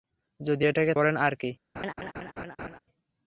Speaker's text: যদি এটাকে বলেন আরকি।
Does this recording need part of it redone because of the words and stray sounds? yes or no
yes